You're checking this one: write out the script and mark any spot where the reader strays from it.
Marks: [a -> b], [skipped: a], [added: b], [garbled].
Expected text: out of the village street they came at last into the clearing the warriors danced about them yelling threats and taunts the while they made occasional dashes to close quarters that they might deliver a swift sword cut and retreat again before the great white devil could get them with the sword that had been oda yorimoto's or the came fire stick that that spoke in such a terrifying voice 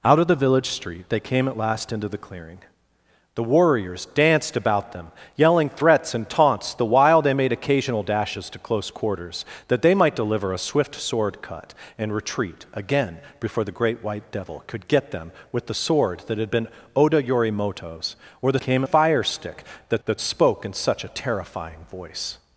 out of the village street they came at last into the clearing the warriors danced about them yelling threats and taunts the while they made occasional dashes to close quarters that they might deliver a swift sword cut and retreat again before the great white devil could get them with the sword that had been oda yorimoto's or the came fire stick that that spoke in such a terrifying voice